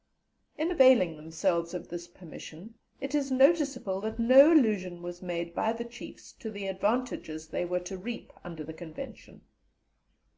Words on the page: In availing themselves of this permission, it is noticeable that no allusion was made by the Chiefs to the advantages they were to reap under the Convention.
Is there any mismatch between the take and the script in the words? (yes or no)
no